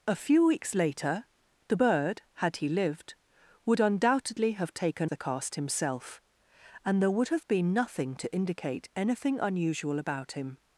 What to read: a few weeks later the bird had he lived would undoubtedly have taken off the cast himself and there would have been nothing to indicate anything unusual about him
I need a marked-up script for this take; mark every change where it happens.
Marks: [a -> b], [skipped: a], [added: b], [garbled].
a few weeks later the bird had he lived would undoubtedly have taken [skipped: off] the cast himself and there would have been nothing to indicate anything unusual about him